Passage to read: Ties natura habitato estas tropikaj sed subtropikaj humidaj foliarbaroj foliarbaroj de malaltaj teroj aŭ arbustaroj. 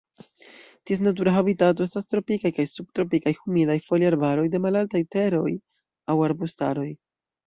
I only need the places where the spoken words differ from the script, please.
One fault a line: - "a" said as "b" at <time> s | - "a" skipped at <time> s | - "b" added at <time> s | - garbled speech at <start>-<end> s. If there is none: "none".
- "sed" said as "kaj" at 2.5 s
- "foliarbaroj" skipped at 4.5 s